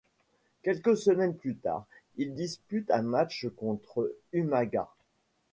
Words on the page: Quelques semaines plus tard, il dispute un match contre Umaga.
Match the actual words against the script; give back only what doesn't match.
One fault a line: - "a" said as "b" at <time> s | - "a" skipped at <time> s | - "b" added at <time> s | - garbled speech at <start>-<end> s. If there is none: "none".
none